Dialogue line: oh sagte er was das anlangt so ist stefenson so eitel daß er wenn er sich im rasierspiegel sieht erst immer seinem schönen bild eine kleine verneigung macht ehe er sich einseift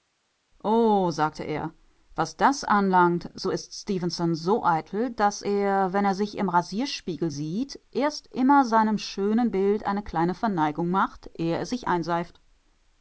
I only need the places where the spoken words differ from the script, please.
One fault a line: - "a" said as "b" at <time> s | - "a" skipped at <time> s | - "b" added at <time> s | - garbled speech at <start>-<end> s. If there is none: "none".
none